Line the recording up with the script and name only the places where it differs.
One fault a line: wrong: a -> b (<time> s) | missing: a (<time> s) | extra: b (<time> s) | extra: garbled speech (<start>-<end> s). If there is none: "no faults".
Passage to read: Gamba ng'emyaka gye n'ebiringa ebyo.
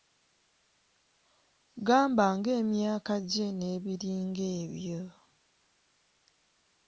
no faults